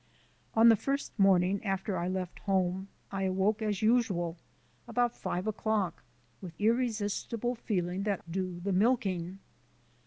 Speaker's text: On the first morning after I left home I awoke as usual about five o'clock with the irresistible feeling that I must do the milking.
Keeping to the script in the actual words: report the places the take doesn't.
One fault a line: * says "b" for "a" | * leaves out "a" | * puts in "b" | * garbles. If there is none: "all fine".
* leaves out "the"
* leaves out "I must"